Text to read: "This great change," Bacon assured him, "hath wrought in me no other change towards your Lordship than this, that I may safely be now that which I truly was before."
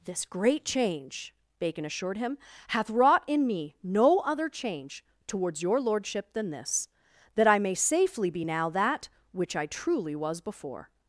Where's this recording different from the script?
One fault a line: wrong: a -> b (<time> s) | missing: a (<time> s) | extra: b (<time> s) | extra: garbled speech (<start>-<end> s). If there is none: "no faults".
no faults